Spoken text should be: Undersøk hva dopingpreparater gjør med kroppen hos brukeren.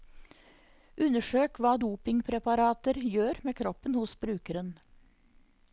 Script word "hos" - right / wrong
right